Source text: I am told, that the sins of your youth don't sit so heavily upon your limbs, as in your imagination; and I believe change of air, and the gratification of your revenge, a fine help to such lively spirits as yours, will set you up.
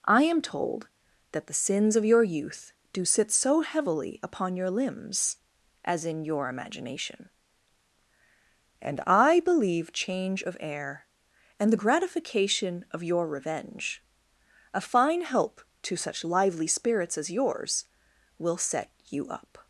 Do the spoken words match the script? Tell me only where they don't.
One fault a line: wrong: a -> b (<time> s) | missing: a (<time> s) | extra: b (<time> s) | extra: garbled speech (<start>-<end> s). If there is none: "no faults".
wrong: don't -> do (2.9 s)